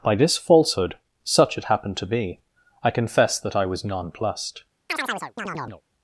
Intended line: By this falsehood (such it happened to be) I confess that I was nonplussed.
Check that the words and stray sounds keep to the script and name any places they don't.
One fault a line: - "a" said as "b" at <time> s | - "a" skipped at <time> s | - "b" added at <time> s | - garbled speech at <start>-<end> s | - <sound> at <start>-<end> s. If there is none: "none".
- chirp at 4.9-5.8 s